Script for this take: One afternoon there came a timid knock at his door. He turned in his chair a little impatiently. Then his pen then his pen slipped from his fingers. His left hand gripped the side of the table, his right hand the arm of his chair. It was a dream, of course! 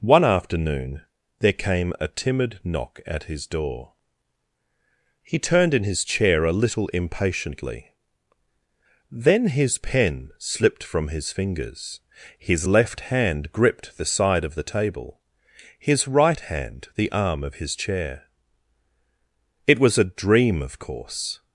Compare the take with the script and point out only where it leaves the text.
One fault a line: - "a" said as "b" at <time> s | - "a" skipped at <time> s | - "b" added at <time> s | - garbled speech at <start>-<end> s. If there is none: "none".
- "then his pen" skipped at 10.3 s